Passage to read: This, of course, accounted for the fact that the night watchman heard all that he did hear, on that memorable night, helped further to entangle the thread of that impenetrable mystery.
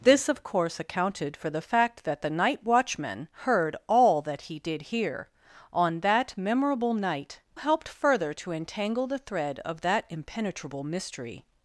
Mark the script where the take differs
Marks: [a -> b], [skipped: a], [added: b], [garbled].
This, of course, accounted for the fact that the night watchman heard all that he did hear, on that memorable night, helped further to entangle the thread of that impenetrable mystery.